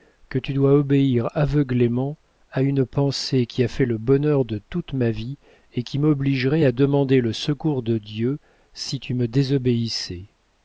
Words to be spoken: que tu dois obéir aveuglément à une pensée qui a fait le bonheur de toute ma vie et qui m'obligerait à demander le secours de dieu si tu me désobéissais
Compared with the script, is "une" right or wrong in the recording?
right